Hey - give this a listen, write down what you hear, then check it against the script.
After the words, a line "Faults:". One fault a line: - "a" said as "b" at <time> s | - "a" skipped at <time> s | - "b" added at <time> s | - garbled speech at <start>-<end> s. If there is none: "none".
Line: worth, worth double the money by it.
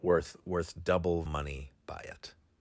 worth, worth double money by it.
Faults:
- "the" skipped at 1.2 s